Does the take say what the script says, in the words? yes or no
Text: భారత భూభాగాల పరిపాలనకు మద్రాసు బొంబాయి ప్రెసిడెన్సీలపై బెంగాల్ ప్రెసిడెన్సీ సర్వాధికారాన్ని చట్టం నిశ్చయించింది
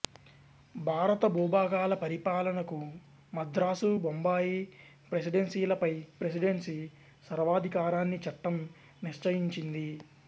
no